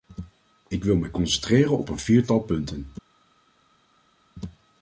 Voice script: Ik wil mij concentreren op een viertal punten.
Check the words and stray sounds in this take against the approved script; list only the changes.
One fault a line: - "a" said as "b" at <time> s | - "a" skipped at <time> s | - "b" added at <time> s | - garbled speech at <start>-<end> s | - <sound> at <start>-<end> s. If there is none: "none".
none